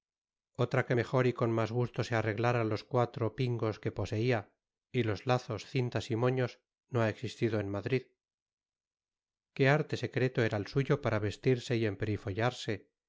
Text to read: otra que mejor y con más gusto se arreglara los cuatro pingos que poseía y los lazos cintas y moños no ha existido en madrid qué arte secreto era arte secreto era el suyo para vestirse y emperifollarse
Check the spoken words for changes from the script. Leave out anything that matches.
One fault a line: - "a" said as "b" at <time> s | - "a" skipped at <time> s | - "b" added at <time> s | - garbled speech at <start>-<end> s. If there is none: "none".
- "arte secreto era" skipped at 10.6 s